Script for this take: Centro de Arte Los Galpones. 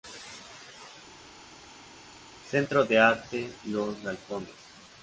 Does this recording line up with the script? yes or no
yes